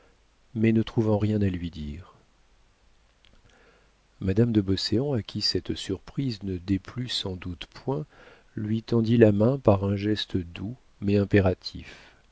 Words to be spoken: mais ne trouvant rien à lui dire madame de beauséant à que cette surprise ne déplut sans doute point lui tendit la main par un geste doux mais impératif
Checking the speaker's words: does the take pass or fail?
fail